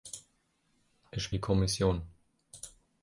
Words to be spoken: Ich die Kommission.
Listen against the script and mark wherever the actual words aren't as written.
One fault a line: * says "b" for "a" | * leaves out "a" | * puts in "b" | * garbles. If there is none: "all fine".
all fine